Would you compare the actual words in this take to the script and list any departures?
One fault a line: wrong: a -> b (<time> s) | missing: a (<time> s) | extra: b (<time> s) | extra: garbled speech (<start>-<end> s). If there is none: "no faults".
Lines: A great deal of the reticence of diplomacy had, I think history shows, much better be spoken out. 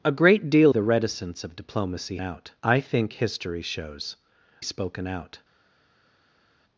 missing: of (0.7 s)
wrong: had -> out (2.2 s)
missing: much better be (4.2 s)